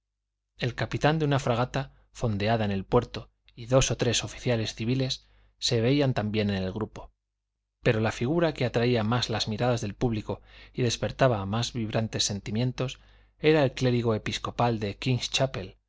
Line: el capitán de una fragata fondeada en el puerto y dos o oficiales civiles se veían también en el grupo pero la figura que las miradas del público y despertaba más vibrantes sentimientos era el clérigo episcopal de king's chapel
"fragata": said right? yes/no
yes